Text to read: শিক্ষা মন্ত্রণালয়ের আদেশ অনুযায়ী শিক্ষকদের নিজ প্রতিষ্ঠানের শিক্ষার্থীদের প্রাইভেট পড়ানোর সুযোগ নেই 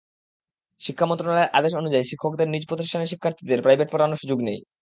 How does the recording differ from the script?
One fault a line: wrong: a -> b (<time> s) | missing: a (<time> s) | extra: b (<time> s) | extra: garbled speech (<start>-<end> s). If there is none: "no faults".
no faults